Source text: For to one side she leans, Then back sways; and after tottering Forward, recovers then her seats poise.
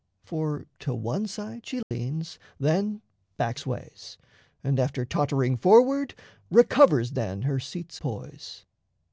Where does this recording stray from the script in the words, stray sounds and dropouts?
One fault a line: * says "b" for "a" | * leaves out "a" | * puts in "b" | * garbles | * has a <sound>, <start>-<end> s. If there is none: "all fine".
* has a dropout, 1.8-1.9 s